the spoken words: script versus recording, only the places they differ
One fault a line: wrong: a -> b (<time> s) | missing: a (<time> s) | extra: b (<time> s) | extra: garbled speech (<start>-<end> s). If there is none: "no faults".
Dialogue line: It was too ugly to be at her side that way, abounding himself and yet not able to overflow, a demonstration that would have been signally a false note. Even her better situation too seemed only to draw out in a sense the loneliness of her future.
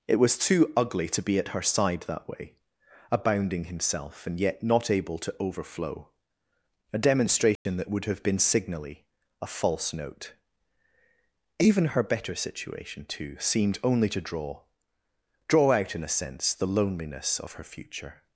extra: draw (15.5 s)